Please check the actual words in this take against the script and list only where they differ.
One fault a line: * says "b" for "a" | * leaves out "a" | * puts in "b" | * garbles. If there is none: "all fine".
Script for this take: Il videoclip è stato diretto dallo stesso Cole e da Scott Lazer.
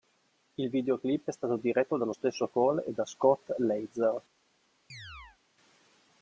all fine